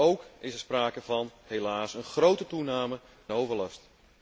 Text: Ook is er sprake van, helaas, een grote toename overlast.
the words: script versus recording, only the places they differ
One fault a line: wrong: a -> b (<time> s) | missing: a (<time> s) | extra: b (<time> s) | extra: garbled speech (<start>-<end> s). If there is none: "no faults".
no faults